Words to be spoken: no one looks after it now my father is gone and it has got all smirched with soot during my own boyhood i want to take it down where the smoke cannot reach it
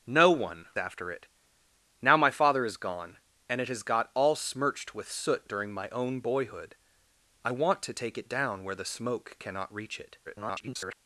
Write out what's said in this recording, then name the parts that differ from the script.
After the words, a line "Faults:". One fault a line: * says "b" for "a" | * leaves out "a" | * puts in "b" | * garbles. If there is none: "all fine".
no one after it now my father is gone and it has got all smirched with soot during my own boyhood i want to take it down where the smoke cannot reach it [garbled]
Faults:
* leaves out "looks"
* garbles